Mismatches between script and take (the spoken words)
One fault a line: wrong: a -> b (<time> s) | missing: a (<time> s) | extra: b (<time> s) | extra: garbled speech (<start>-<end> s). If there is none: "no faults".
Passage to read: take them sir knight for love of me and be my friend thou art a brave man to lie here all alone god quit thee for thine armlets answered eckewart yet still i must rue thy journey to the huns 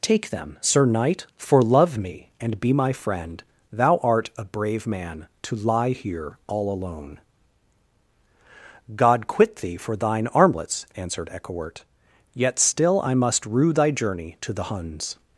missing: of (2.0 s)